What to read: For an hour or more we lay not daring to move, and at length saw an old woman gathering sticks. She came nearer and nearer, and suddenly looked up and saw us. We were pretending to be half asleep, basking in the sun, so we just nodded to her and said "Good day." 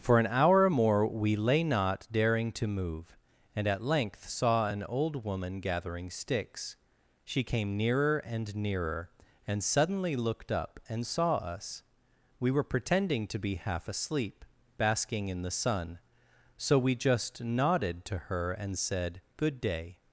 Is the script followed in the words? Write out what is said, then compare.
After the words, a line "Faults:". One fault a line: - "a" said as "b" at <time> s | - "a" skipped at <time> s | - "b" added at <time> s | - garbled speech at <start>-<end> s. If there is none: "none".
For an hour or more we lay not daring to move, and at length saw an old woman gathering sticks. She came nearer and nearer, and suddenly looked up and saw us. We were pretending to be half asleep, basking in the sun, so we just nodded to her and said "Good day."
Faults:
none